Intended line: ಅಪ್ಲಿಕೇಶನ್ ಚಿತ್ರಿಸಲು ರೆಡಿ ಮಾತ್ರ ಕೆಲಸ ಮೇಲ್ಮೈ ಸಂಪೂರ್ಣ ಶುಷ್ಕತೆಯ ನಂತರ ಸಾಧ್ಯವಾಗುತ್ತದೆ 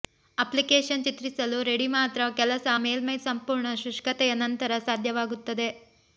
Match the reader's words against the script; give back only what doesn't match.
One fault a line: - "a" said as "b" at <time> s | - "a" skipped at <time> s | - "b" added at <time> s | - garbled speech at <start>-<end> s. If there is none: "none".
none